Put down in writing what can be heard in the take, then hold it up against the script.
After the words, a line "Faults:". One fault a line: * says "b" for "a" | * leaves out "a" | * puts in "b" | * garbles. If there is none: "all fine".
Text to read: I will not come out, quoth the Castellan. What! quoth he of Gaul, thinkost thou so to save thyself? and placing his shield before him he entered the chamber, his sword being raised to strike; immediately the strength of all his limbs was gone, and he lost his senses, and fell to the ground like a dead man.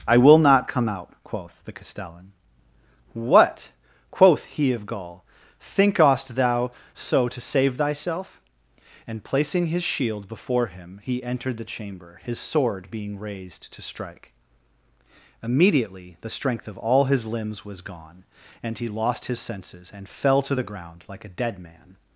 I will not come out, quoth the Castellan. What! quoth he of Gaul, thinkost thou so to save thyself? and placing his shield before him he entered the chamber, his sword being raised to strike; immediately the strength of all his limbs was gone, and he lost his senses, and fell to the ground like a dead man.
Faults:
all fine